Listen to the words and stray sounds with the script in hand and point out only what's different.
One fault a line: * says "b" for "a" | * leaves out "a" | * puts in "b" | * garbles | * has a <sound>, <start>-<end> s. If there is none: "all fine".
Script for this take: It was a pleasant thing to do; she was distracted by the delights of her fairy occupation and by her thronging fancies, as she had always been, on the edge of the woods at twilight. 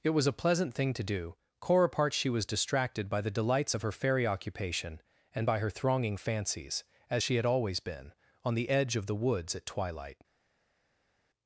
* puts in "core apart"